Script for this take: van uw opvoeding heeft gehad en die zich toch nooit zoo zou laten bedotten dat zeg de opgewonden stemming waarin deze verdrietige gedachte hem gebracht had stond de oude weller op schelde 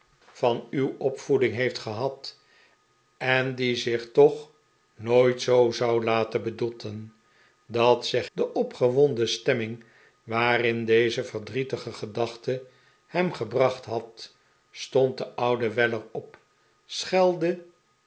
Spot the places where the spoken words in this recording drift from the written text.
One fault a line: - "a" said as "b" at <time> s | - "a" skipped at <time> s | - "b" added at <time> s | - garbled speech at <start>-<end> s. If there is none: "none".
none